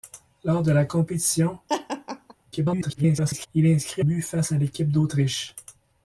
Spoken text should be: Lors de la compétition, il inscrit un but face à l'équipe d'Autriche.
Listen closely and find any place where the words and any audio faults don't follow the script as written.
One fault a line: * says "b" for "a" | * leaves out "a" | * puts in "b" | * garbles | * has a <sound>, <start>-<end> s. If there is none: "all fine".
* has a laugh, 1.7-2.3 s
* garbles
* leaves out "un"